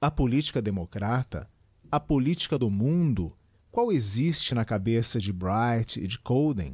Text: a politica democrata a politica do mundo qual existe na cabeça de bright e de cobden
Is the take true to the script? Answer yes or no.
yes